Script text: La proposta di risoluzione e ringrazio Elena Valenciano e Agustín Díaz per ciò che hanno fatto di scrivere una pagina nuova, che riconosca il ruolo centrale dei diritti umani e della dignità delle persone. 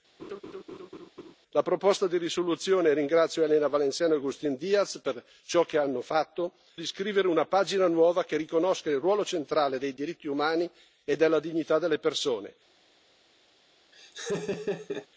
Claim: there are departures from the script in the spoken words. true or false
false